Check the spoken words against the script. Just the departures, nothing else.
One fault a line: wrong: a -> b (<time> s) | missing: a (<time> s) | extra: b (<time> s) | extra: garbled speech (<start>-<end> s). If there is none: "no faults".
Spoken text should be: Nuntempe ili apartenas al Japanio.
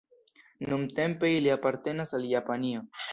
no faults